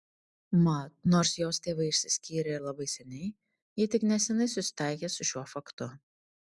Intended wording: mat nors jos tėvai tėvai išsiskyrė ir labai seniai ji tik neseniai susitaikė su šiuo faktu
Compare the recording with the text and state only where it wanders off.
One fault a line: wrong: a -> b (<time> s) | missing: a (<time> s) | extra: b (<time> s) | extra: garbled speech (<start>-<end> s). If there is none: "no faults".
missing: tėvai (1.9 s)